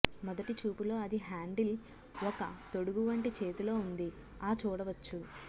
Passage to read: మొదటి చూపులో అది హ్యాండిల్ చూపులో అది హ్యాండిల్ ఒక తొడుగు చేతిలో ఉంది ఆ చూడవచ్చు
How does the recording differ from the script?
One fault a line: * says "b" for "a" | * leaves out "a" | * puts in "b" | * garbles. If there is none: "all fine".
* leaves out "చూపులో అది హ్యాండిల్"
* puts in "వంటి"